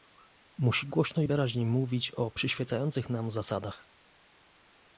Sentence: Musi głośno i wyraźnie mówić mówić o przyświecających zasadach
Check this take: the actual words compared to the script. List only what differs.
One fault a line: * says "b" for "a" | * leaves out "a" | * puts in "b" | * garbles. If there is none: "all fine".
* leaves out "mówić"
* puts in "nam"